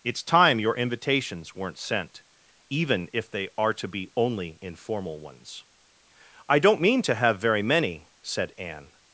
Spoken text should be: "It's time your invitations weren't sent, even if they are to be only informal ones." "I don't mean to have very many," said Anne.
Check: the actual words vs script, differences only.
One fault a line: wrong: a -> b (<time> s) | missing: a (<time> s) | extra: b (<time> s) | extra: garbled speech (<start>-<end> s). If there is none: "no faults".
no faults